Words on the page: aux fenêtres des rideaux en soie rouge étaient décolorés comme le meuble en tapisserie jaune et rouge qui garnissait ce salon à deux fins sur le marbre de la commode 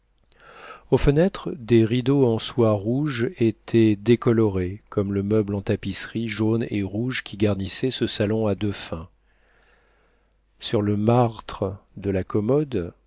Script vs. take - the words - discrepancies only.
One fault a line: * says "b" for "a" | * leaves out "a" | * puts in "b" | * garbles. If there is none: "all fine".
all fine